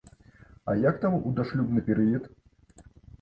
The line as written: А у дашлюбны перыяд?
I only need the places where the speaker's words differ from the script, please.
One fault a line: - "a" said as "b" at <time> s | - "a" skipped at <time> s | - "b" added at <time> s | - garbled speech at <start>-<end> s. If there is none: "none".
- "як там" added at 0.8 s